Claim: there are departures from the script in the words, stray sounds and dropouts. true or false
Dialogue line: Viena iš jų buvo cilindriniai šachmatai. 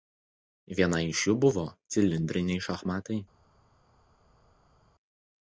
false